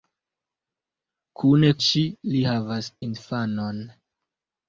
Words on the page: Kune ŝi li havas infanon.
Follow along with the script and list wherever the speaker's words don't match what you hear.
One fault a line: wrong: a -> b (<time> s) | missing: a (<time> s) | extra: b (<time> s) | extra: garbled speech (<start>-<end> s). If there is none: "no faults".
no faults